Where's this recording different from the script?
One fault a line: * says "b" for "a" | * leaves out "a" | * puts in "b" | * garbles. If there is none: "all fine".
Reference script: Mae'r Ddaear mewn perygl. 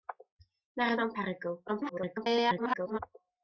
* leaves out "Ddaear"
* garbles